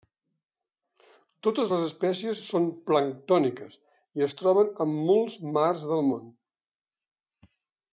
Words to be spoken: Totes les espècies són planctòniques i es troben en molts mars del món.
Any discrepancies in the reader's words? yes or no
no